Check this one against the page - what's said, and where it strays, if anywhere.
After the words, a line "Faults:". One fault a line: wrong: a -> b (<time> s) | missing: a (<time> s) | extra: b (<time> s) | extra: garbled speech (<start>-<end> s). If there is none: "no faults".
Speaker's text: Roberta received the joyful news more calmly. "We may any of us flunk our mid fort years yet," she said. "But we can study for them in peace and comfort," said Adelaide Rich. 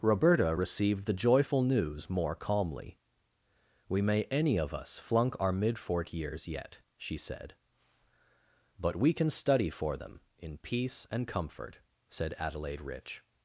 Roberta received the joyful news more calmly. "We may any of us flunk our mid fort years yet," she said. "But we can study for them in peace and comfort," said Adelaide Rich.
Faults:
no faults